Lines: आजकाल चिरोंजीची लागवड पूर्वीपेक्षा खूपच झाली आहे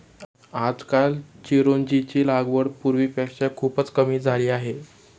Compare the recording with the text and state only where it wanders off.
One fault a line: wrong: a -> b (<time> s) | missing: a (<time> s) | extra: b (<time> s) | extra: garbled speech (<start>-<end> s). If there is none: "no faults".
extra: कमी (3.9 s)